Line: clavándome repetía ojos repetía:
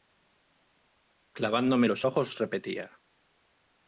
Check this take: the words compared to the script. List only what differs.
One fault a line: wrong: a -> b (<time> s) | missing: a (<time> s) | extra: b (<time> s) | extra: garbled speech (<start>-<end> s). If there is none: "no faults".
wrong: repetía -> los (1.8 s)